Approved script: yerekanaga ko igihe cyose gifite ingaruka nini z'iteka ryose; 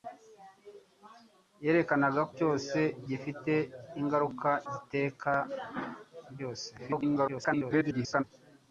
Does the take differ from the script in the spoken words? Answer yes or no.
yes